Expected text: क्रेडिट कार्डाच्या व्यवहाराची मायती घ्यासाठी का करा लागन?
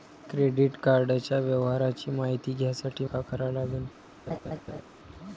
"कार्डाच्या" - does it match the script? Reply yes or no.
yes